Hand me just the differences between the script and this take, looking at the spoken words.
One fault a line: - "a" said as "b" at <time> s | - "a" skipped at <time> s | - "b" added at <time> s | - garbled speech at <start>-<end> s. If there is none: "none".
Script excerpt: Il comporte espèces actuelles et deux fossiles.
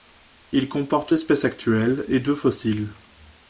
none